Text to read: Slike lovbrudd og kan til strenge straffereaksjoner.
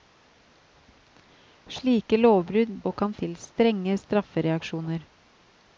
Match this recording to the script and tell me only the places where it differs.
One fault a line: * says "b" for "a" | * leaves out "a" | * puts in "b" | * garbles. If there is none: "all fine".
all fine